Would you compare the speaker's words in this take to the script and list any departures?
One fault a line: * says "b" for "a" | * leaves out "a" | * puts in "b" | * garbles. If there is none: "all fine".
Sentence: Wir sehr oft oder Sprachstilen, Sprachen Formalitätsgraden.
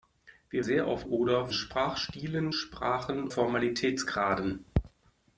all fine